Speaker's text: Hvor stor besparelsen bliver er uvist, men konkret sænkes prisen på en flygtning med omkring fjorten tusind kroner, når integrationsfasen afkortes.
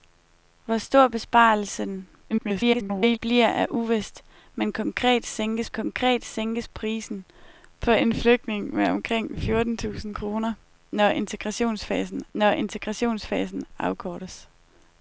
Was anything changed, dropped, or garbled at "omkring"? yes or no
no